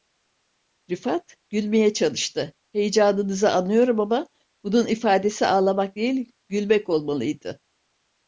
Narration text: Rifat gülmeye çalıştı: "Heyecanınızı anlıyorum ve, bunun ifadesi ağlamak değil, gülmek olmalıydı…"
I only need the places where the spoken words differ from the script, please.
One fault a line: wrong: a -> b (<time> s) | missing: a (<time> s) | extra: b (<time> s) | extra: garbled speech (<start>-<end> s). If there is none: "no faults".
wrong: ve -> ama (4.0 s)